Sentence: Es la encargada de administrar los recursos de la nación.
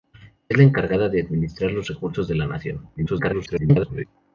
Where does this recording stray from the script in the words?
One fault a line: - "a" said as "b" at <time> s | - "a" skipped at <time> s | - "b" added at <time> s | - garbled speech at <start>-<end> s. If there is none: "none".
- garbled speech at 3.0-4.1 s